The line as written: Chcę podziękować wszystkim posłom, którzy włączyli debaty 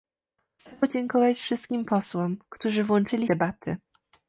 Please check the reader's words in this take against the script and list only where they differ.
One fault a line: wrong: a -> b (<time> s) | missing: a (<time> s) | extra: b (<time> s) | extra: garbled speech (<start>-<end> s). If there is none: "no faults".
no faults